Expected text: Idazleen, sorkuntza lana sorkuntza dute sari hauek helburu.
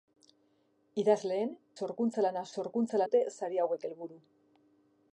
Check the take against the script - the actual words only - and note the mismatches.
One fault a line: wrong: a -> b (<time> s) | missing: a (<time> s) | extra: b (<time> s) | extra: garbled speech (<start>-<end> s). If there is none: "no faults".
no faults